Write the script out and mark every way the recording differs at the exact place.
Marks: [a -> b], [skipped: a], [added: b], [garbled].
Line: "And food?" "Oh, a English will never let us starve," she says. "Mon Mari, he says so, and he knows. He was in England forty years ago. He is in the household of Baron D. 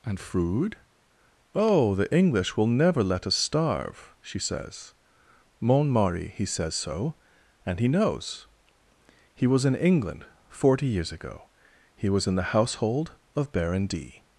"And food?" "Oh, [a -> the] English will never let us starve," she says. "Mon Mari, he says so, and he knows. He was in England forty years ago. He [is -> was] in the household of Baron D.